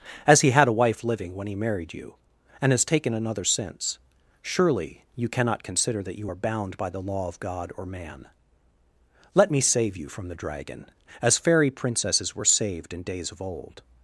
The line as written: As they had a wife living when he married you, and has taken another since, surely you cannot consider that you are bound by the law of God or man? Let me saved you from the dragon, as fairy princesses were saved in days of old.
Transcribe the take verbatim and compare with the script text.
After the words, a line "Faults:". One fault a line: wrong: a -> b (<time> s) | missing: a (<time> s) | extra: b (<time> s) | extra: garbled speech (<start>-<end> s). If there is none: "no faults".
As he had a wife living when he married you, and has taken another since, surely you cannot consider that you are bound by the law of God or man? Let me save you from the dragon, as fairy princesses were saved in days of old.
Faults:
wrong: they -> he (0.4 s)
wrong: saved -> save (9.6 s)